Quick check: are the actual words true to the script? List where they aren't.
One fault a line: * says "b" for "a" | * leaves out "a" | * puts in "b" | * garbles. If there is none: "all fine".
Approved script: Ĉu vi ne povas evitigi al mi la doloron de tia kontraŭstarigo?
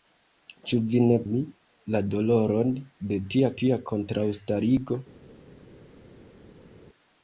* leaves out "povas evitigi al"
* puts in "tia"